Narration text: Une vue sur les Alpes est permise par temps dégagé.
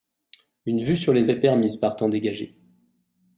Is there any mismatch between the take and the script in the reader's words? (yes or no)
yes